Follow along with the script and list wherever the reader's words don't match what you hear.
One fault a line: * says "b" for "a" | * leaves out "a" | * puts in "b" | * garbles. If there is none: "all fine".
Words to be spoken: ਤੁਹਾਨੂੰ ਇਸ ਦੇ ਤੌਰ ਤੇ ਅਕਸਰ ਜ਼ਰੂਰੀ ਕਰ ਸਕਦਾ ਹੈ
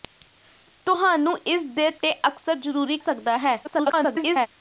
* leaves out "ਤੌਰ"
* leaves out "ਕਰ"
* garbles